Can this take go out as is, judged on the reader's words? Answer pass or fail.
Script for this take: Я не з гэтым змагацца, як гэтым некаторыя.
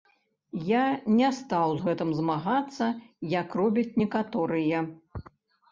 fail